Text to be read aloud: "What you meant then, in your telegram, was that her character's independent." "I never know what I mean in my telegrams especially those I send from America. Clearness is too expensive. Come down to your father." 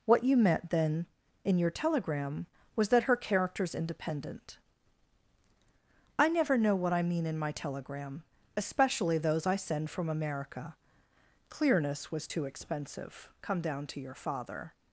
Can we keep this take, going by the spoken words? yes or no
no